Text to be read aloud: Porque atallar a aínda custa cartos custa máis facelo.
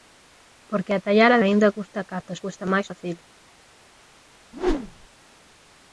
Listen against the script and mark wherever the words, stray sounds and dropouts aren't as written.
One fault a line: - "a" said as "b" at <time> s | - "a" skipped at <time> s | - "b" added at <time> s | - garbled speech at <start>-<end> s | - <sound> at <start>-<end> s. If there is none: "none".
- whoosh at 4.5-5.1 s